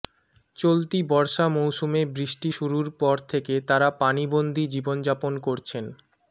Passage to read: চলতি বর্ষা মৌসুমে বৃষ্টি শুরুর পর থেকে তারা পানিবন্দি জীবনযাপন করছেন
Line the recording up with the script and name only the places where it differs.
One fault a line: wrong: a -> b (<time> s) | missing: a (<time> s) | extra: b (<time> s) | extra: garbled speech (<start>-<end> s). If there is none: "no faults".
no faults